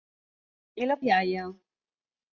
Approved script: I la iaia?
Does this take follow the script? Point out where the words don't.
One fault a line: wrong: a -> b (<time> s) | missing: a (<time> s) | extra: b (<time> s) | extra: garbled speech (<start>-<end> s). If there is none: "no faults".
no faults